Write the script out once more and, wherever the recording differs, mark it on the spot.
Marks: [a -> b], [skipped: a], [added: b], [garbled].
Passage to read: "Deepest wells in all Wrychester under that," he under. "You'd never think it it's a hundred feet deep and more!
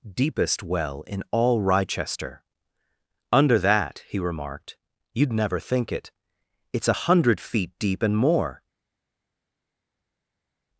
"Deepest [wells -> well] in all Wrychester under that," he [under. -> remarked] "You'd never think it it's a hundred feet deep and more!